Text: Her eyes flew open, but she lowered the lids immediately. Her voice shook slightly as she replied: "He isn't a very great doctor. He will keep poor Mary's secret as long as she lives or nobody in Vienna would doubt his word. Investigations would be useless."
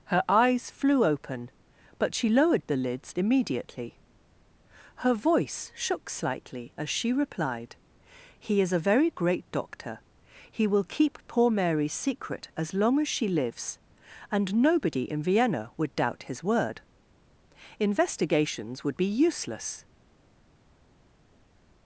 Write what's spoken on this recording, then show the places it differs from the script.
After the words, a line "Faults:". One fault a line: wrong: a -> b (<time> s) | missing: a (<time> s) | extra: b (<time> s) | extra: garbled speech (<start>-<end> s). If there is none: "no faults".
Her eyes flew open, but she lowered the lids immediately. Her voice shook slightly as she replied: "He is a very great doctor. He will keep poor Mary's secret as long as she lives and nobody in Vienna would doubt his word. Investigations would be useless."
Faults:
wrong: isn't -> is (8.6 s)
wrong: or -> and (14.3 s)